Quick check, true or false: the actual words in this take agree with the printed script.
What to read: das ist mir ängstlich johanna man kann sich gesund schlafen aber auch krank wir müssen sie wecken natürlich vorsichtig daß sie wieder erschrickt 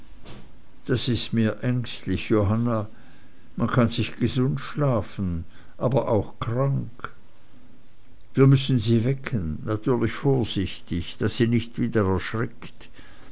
false